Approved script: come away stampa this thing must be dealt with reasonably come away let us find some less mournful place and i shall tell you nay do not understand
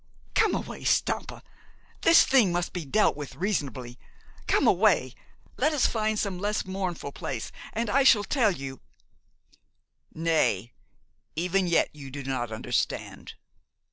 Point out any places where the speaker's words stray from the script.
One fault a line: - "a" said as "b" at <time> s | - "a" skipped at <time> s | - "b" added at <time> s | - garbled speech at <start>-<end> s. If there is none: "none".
- "even yet you" added at 11.3 s